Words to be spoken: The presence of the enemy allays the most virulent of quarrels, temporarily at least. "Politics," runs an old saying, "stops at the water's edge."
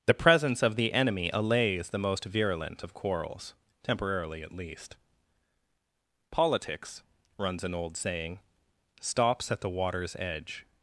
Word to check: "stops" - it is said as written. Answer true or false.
true